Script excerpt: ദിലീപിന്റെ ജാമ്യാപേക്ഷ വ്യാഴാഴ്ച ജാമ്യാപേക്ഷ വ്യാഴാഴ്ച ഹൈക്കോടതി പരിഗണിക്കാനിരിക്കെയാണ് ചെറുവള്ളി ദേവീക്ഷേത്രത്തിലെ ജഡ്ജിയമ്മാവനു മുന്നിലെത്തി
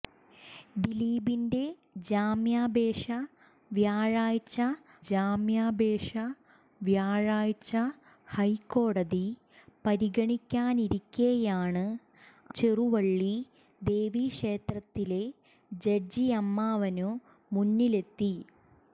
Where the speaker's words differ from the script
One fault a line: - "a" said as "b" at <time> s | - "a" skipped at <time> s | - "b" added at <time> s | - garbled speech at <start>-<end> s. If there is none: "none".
none